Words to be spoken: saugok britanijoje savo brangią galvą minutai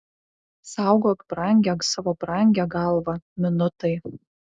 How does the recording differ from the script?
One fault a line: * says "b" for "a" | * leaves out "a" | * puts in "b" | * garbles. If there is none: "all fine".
* says "brangią" for "britanijoje"